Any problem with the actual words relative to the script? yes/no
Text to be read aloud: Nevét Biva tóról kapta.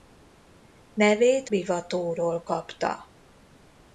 no